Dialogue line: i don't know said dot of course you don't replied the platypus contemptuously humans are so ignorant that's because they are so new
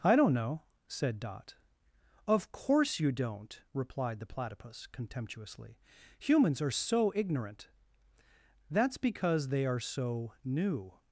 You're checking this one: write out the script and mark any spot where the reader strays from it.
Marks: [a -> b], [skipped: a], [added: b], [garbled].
i don't know said dot of course you don't replied the platypus contemptuously humans are so ignorant that's because they are so new